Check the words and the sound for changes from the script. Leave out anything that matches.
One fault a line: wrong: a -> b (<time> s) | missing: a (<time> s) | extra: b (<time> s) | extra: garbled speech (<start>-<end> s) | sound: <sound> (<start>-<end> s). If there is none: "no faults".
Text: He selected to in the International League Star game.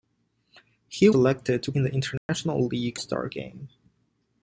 sound: dropout (2.2-2.3 s)